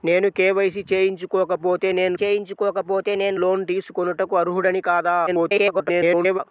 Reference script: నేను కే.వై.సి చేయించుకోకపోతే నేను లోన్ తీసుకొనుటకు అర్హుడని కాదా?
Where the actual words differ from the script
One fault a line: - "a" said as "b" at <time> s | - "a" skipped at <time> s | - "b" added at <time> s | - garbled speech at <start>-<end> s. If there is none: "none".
- "చేయించుకోకపోతే నేను" added at 2.2 s
- garbled speech at 5.3-6.4 s